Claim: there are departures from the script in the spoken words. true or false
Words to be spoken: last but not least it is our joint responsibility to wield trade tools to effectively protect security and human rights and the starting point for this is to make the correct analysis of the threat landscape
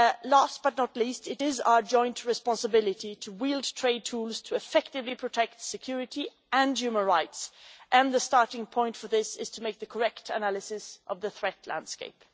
false